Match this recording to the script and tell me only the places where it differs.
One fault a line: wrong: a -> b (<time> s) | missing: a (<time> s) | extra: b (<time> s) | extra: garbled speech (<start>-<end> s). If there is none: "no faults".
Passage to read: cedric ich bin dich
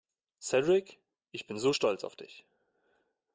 extra: so stolz auf (1.6 s)